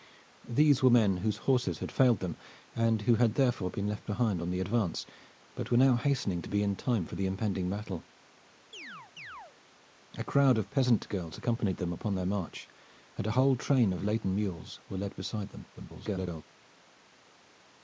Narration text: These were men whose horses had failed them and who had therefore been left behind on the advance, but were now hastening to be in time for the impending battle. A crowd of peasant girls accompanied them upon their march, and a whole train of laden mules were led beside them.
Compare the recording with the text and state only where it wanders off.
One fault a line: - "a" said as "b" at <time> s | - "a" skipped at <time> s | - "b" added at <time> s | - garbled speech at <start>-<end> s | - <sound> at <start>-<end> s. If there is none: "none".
- chirp at 8.7-9.6 s
- garbled speech at 15.7-16.4 s